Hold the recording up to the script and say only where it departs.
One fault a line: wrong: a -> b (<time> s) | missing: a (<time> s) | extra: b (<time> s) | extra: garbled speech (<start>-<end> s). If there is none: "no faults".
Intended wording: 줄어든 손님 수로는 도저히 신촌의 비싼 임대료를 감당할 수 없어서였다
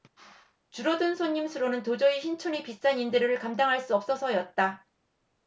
no faults